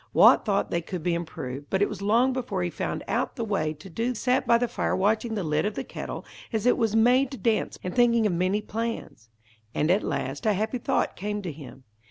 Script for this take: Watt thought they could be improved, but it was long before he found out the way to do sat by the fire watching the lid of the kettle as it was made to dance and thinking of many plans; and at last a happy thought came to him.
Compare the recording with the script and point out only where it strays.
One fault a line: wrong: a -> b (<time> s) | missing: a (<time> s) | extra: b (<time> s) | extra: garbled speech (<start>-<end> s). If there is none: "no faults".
no faults